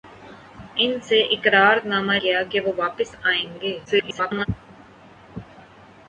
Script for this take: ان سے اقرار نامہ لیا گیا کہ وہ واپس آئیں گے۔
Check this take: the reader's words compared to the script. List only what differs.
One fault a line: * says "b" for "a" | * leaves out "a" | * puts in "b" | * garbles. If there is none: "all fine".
* leaves out "لیا"
* garbles